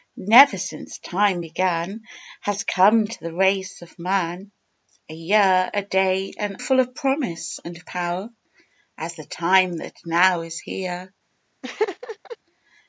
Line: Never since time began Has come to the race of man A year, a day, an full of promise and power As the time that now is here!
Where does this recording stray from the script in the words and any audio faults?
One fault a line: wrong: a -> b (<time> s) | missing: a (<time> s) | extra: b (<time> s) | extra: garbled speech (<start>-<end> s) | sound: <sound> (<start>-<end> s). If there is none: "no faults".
sound: laugh (11.6-12.4 s)